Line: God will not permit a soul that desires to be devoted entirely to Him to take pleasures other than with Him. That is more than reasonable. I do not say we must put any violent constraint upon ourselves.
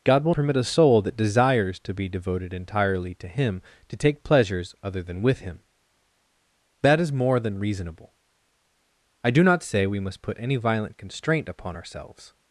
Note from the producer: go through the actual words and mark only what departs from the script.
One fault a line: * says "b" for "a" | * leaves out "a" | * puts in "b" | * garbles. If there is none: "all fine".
* leaves out "not"